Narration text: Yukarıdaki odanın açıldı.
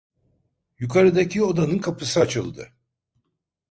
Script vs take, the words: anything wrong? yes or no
yes